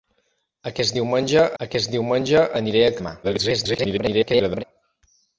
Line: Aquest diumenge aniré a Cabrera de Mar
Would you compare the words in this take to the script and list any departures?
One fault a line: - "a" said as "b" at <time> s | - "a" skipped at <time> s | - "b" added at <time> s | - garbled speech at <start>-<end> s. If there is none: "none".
- "aquest diumenge" added at 1.6 s
- "Cabrera" skipped at 2.9 s
- garbled speech at 3.2-4.6 s